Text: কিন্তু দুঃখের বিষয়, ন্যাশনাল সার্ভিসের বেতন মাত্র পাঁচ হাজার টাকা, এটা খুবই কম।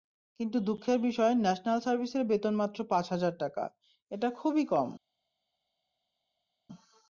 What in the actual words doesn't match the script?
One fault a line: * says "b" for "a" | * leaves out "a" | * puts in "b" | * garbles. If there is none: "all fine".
all fine